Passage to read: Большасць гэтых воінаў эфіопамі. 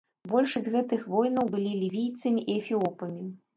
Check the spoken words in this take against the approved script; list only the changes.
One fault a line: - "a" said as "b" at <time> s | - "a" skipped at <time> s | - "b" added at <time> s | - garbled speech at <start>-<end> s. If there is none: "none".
- "былі лівійцамі і" added at 1.6 s